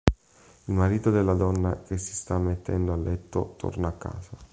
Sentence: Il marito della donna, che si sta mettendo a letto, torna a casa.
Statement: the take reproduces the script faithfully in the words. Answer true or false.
true